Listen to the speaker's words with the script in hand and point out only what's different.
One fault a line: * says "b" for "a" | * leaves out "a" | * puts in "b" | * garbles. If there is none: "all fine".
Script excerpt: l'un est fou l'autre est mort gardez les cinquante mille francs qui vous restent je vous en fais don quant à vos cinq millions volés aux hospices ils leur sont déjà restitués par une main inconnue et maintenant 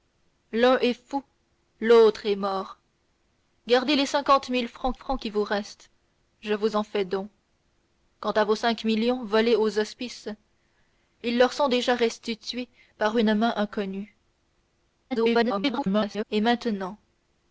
* puts in "francs"
* garbles